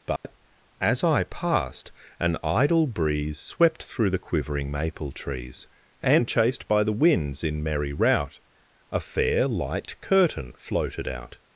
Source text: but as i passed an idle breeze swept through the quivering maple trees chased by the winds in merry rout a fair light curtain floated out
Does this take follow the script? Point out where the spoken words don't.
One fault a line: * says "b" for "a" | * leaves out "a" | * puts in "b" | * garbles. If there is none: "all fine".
* puts in "and"